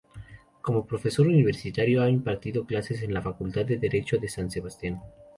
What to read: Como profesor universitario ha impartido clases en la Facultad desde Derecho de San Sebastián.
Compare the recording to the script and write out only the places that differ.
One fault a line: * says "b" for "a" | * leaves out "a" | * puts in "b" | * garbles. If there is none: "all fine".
* says "de" for "desde"